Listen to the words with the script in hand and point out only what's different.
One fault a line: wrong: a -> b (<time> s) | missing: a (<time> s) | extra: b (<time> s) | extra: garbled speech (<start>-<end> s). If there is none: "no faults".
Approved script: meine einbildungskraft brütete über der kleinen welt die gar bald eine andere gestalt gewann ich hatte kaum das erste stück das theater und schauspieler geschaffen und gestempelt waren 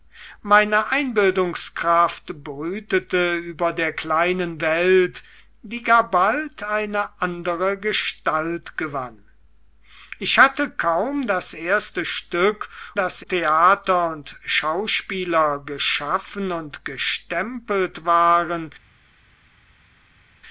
no faults